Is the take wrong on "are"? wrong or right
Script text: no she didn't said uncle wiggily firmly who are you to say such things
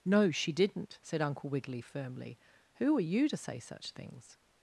right